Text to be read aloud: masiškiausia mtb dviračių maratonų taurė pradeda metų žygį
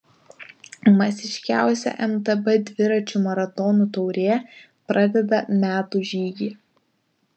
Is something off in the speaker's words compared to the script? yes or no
no